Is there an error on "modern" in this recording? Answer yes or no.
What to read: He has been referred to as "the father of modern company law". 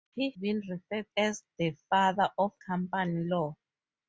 yes